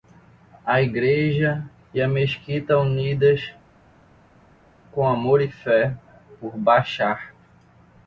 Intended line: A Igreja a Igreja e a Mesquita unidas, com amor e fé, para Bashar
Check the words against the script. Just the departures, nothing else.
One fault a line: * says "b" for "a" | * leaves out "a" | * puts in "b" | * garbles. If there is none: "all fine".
* leaves out "a Igreja"
* says "por" for "para"